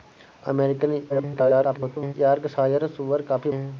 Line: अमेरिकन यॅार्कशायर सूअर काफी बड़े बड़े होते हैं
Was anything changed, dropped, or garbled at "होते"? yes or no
yes